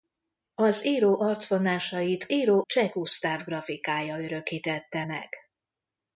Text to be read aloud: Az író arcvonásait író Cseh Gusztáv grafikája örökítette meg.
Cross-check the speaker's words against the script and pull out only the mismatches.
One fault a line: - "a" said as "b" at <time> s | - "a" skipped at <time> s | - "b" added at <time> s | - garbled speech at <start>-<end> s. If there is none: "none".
none